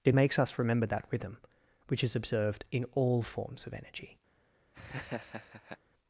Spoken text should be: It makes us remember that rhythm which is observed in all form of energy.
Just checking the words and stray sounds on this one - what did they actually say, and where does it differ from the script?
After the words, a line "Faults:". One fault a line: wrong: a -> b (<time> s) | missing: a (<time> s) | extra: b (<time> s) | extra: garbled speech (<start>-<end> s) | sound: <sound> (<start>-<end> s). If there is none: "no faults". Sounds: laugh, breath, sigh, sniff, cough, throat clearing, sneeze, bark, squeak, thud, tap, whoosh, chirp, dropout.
It makes us remember that rhythm which is observed in all forms of energy.
Faults:
wrong: form -> forms (3.2 s)
sound: laugh (4.7-5.8 s)